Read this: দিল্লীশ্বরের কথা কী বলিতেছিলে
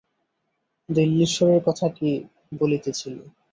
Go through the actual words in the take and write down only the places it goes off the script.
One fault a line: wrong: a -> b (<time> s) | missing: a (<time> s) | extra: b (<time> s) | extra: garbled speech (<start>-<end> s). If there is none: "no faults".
no faults